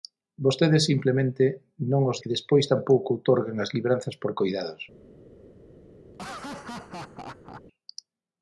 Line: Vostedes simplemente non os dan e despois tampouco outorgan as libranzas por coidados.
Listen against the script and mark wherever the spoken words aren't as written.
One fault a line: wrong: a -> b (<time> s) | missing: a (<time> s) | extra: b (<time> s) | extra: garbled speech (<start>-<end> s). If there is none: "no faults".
missing: dan (2.2 s)